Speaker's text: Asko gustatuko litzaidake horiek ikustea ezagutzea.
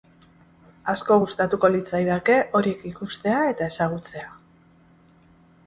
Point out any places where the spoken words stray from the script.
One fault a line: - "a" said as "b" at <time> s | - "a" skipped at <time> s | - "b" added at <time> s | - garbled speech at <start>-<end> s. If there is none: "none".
- "eta" added at 3.5 s